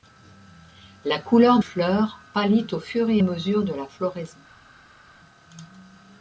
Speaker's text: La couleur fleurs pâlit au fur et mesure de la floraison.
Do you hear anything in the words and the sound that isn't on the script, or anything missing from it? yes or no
no